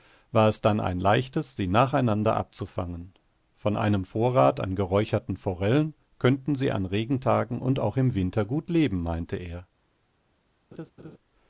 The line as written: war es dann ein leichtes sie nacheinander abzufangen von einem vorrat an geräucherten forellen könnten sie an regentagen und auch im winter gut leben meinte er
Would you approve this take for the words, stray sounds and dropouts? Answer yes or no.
no